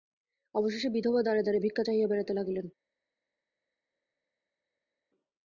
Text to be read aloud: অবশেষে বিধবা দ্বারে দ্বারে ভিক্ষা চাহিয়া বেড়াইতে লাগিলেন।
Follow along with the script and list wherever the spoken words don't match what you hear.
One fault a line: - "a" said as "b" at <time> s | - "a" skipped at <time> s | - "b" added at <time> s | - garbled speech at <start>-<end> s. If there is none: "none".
none